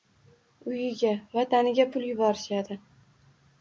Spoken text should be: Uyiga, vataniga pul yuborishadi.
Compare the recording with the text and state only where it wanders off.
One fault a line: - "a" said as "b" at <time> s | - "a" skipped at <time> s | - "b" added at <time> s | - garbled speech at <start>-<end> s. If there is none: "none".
none